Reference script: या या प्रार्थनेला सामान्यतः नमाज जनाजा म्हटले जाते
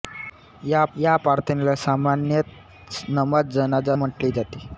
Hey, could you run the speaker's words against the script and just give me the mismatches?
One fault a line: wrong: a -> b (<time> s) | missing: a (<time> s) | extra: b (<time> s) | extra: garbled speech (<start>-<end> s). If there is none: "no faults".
no faults